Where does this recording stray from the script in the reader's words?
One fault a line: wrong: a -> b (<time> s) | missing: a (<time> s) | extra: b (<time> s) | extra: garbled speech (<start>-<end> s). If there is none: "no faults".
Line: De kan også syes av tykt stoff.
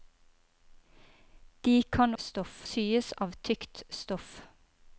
wrong: også -> stoff (2.2 s)